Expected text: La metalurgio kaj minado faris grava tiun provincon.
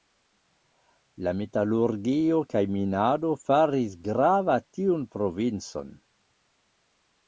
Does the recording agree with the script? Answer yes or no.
yes